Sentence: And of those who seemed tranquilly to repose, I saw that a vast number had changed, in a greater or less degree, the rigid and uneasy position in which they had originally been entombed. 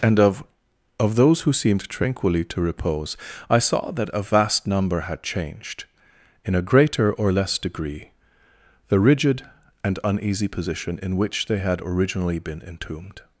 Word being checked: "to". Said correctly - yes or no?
yes